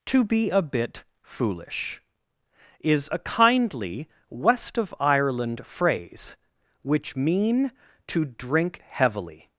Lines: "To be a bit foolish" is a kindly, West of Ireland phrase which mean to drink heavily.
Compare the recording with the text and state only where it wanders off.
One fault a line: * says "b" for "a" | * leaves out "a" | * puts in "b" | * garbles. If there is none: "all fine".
all fine